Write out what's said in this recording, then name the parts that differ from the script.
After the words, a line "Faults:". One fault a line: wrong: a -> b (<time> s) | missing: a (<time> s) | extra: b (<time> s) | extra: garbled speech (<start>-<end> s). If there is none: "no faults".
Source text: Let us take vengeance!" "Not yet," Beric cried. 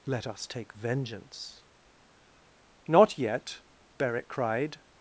Let us take vengeance!" "Not yet," Beric cried.
Faults:
no faults